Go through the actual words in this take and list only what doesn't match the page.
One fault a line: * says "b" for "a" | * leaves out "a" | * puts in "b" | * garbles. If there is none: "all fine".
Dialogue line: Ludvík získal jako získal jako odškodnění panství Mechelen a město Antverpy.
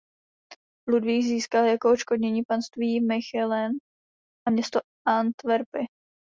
* leaves out "získal jako"